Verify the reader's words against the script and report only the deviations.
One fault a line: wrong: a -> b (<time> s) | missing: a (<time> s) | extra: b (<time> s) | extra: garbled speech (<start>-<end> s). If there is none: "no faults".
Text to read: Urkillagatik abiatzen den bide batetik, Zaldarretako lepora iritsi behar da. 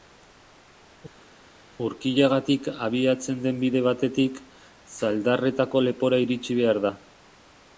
no faults